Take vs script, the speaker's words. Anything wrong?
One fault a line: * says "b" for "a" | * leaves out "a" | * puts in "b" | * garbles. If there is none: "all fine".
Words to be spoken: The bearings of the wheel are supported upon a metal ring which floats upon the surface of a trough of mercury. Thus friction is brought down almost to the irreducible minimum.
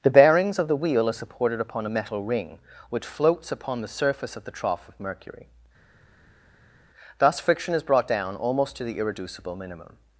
* says "the" for "a"